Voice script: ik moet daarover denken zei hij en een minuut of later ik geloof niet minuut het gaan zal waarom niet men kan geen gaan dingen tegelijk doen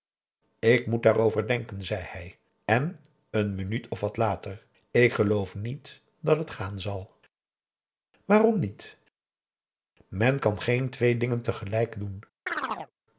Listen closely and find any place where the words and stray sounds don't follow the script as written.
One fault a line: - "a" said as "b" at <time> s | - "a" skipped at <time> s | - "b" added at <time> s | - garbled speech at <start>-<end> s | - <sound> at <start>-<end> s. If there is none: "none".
- "wat" added at 4.0 s
- "minuut" said as "dat" at 6.2 s
- "gaan" said as "twee" at 10.9 s
- chirp at 12.5-12.9 s